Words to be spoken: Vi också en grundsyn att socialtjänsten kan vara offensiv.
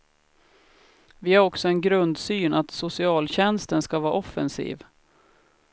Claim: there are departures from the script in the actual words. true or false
true